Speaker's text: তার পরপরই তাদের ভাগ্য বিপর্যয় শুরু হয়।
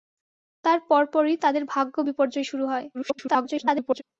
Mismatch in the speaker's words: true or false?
true